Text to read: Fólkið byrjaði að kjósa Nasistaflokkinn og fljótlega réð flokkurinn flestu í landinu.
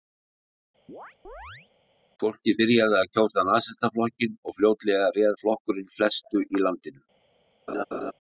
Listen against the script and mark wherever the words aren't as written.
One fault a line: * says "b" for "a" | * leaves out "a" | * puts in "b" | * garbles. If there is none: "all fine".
all fine